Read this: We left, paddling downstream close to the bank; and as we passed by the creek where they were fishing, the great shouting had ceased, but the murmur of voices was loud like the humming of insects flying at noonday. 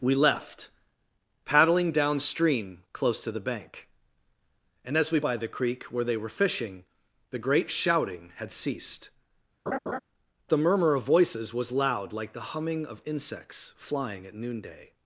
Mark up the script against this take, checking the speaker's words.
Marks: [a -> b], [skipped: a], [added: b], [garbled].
We left, paddling downstream close to the bank; and as we [skipped: passed] by the creek where they were fishing, the great shouting had ceased, [skipped: but] the murmur of voices was loud like the humming of insects flying at noonday.